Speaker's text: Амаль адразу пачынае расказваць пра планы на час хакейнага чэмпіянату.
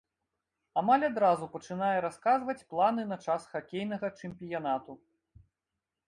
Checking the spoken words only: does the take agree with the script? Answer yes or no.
no